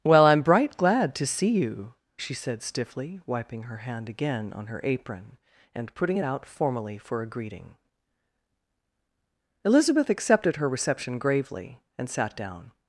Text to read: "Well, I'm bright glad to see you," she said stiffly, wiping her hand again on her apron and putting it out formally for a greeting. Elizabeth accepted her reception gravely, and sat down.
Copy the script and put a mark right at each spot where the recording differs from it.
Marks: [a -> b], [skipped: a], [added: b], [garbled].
"Well, I'm bright glad to see you," she said stiffly, wiping her hand again on her apron and putting it out formally for a greeting. Elizabeth accepted her reception gravely, and sat down.